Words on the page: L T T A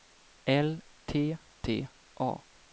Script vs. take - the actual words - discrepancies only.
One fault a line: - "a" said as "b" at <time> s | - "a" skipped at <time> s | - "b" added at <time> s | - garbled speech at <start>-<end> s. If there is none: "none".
none